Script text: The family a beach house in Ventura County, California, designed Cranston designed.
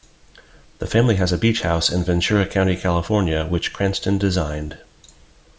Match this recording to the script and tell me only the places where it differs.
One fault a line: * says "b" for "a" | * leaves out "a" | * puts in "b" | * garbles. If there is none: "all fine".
* puts in "has"
* says "which" for "designed"